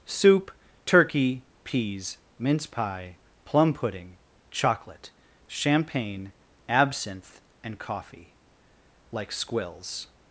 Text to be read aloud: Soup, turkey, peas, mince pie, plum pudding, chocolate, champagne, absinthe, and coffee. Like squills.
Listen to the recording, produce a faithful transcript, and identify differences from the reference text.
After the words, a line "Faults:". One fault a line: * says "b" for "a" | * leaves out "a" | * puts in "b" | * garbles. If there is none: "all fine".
Soup, turkey, peas, mince pie, plum pudding, chocolate, champagne, absinthe, and coffee. Like squills.
Faults:
all fine